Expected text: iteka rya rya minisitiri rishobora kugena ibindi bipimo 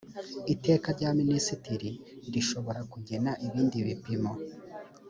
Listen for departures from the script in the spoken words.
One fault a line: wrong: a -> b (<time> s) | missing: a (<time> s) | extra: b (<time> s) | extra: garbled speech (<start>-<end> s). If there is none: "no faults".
missing: rya (1.1 s)